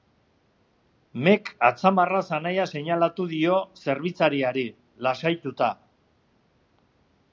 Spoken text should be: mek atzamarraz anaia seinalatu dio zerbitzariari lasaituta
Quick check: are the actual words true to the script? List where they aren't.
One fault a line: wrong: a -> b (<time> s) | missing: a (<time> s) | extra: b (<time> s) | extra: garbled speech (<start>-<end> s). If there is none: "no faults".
no faults